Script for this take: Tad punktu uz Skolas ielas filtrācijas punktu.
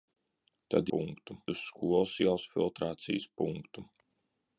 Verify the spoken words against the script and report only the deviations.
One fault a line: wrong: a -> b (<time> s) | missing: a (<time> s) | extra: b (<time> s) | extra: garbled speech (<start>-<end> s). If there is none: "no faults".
no faults